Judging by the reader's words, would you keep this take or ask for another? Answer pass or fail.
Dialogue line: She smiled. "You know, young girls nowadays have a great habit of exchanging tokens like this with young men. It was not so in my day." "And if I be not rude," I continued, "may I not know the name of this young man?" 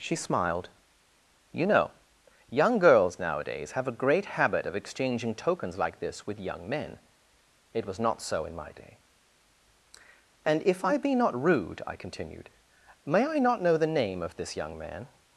pass